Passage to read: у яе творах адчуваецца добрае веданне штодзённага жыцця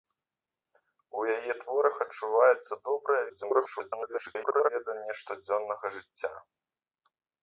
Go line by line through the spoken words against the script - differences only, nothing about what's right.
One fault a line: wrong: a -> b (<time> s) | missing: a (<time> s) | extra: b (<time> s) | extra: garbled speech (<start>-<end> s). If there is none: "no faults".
extra: garbled speech (3.3-4.7 s)